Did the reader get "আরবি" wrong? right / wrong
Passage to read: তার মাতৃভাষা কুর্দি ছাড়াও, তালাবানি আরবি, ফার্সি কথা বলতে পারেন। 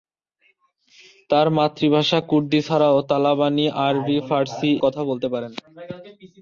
right